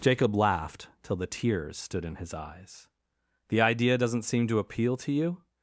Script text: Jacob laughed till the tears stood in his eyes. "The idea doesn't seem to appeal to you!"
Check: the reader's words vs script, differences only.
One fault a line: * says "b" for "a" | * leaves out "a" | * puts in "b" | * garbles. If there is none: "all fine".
all fine